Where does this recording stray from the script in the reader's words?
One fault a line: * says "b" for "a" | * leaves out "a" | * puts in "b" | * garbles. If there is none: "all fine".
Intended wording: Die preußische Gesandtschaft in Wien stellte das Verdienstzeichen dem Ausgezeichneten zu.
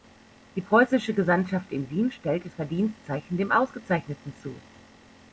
* leaves out "das"